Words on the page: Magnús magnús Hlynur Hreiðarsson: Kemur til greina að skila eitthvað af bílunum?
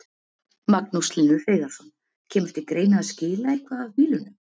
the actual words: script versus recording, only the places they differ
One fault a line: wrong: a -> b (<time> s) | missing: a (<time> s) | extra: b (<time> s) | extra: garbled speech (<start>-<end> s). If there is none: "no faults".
missing: magnús (1.1 s)